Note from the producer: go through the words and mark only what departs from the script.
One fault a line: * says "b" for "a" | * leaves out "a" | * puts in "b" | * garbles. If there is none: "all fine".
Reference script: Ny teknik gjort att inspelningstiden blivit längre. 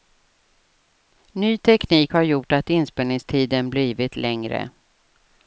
* puts in "har"